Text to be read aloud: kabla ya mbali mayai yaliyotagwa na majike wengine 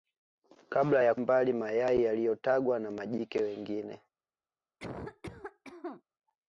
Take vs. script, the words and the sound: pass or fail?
fail